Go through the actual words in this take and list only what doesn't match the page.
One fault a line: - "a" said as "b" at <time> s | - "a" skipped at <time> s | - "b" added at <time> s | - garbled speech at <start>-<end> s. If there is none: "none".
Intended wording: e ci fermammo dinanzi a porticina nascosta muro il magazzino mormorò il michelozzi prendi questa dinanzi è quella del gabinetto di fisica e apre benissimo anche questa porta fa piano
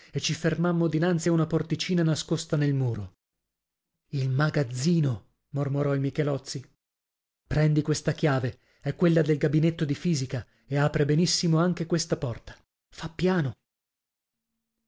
- "una" added at 1.3 s
- "nel" added at 2.6 s
- "dinanzi" said as "chiave" at 8.1 s